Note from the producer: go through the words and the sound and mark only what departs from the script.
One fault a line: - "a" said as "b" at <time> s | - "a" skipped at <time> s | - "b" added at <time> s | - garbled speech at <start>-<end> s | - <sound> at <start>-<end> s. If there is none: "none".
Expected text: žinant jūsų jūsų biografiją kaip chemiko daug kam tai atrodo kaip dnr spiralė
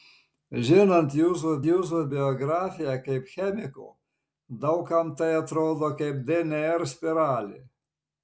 none